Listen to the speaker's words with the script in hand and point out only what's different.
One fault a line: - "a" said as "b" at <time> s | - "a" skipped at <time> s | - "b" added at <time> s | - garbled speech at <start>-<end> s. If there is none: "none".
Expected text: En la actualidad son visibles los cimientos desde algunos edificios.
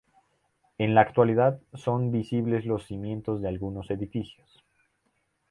- "desde" said as "de" at 3.4 s